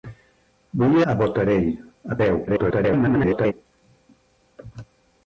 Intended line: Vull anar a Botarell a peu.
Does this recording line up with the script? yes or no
no